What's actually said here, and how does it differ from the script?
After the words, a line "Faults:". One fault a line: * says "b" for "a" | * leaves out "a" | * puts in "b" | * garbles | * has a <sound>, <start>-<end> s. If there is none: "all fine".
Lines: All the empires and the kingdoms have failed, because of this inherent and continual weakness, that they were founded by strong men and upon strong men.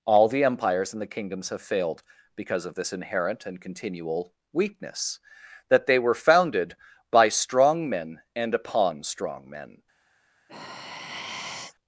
All the empires and the kingdoms have failed, because of this inherent and continual weakness, that they were founded by strong men and upon strong men.
Faults:
* has a sigh, 10.5-11.8 s